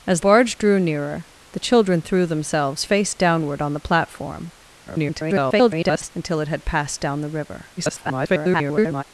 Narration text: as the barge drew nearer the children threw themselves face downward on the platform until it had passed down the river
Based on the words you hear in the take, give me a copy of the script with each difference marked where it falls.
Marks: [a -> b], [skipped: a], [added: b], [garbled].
as [skipped: the] barge drew nearer the children threw themselves face downward on the platform [garbled] until it had passed down the river [garbled]